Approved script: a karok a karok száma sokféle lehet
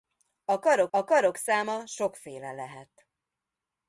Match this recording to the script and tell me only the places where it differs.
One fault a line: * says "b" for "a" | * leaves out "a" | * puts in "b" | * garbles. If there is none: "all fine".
all fine